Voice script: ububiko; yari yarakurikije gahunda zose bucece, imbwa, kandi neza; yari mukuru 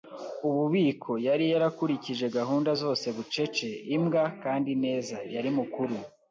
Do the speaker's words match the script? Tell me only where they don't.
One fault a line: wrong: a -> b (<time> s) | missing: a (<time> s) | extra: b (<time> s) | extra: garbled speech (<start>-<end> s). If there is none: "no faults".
no faults